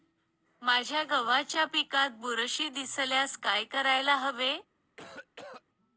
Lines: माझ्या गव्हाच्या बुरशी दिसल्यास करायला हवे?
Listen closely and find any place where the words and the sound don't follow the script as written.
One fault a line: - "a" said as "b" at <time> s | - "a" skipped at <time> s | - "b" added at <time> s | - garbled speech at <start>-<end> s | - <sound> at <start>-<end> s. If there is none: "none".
- "पिकात" added at 1.6 s
- "काय" added at 3.4 s
- cough at 5.0-5.6 s